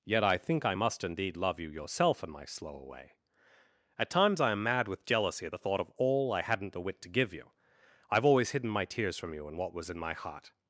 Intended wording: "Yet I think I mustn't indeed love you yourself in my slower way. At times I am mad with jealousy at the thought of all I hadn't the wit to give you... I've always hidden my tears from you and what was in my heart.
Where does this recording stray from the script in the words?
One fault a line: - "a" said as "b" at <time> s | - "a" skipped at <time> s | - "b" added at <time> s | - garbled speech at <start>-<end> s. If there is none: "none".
- "mustn't" said as "must" at 0.7 s